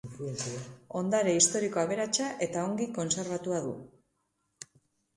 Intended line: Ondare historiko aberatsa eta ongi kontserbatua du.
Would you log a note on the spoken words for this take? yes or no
no